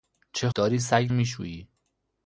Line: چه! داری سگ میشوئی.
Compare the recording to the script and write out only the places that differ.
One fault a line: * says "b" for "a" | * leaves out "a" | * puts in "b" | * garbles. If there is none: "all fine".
all fine